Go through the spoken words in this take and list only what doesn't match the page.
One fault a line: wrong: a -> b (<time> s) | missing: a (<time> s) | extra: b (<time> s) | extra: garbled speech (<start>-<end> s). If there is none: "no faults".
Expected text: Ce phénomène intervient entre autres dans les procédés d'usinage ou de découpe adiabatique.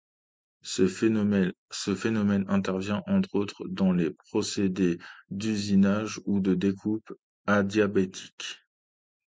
no faults